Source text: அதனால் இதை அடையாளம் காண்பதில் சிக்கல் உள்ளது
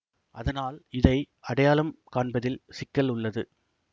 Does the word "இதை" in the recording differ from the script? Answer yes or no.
no